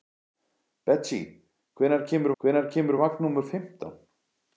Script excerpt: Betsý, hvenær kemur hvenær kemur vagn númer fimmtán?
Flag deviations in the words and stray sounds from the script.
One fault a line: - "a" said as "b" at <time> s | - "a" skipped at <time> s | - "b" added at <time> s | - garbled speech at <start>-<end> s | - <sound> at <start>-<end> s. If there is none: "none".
none